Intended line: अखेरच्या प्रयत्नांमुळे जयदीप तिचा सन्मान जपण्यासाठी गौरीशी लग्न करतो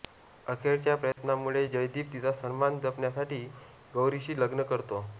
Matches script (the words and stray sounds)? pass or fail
fail